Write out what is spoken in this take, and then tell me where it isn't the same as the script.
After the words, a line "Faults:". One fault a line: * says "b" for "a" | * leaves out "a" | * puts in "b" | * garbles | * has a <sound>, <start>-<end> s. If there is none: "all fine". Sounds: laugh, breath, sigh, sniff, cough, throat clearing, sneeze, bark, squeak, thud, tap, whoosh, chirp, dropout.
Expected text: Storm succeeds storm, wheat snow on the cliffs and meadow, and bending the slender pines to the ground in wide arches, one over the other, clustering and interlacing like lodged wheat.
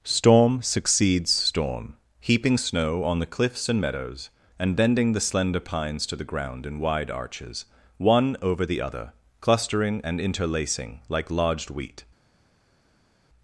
Storm succeeds storm, heaping snow on the cliffs and meadows, and bending the slender pines to the ground in wide arches, one over the other, clustering and interlacing like lodged wheat.
Faults:
* says "heaping" for "wheat"
* says "meadows" for "meadow"